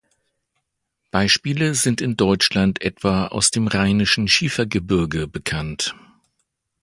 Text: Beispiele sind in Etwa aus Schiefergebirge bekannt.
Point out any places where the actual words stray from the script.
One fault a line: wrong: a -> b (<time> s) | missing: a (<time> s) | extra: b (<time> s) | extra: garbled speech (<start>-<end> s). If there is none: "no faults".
extra: Deutschland (2.2 s)
extra: dem Rheinischen (3.5 s)